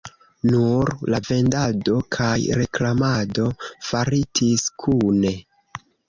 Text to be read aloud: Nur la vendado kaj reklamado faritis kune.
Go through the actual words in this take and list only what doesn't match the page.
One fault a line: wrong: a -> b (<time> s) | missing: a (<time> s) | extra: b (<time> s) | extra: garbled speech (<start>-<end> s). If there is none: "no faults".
no faults